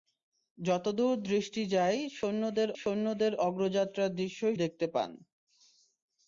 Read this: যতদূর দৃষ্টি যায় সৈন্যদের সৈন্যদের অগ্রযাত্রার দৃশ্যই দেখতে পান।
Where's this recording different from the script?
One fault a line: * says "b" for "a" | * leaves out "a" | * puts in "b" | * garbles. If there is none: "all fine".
all fine